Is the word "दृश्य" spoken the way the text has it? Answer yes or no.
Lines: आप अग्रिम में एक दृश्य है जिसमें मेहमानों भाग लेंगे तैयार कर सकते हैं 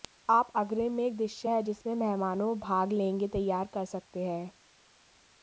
yes